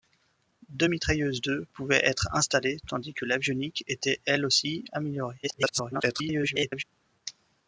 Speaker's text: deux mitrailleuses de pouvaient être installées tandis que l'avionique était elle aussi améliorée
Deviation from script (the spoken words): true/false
true